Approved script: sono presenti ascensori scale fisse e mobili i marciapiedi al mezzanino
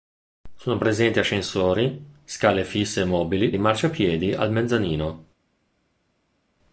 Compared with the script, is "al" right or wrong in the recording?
right